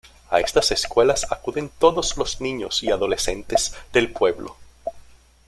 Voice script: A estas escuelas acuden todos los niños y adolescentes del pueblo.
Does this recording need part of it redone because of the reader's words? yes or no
no